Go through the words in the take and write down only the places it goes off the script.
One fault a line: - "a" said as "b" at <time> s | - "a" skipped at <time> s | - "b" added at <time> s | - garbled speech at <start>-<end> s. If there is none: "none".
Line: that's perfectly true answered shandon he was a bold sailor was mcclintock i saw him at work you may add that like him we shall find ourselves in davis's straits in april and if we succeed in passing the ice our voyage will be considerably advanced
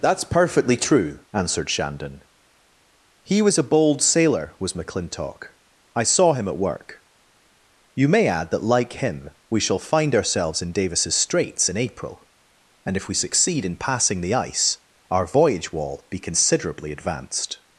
- "will" said as "wall" at 15.7 s